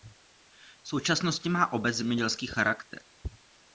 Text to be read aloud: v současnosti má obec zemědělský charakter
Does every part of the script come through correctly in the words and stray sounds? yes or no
yes